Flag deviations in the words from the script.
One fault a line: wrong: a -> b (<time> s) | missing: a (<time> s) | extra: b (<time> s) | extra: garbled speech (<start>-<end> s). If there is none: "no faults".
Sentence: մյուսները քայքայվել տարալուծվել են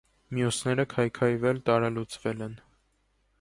no faults